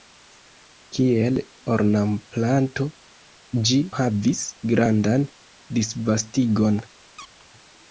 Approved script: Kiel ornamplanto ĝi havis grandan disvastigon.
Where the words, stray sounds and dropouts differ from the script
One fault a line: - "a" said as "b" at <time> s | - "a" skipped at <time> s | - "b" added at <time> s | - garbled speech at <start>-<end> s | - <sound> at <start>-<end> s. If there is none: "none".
- squeak at 7.2-7.5 s